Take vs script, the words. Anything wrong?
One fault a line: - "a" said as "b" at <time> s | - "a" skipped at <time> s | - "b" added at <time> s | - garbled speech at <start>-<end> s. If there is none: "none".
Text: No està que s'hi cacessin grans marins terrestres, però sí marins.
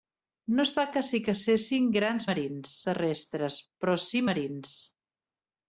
none